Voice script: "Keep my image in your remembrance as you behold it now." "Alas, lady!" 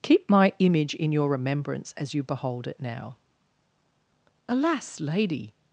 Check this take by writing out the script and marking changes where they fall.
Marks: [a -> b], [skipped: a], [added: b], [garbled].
"Keep my image in your remembrance as you behold it now." "Alas, lady!"